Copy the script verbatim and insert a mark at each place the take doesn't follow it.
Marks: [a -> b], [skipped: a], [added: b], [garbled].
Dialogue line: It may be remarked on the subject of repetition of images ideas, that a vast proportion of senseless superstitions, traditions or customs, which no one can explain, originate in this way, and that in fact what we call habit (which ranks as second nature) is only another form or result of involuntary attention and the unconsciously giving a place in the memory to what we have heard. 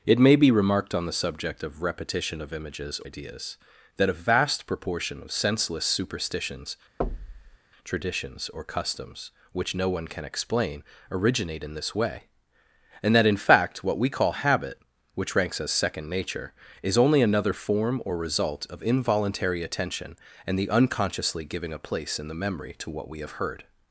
It may be remarked on the subject of repetition of images ideas, that a vast proportion of senseless superstitions, traditions or customs, which no one can explain, originate in this way, and that in fact what we call habit (which ranks as second nature) is only another form or result of involuntary attention and the unconsciously giving a place in the memory to what we have heard.